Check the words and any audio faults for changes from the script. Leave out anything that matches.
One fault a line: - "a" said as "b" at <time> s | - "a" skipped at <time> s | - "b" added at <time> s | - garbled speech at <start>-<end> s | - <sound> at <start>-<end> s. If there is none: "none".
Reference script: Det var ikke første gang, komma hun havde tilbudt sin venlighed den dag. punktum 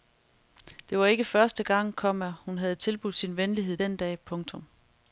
none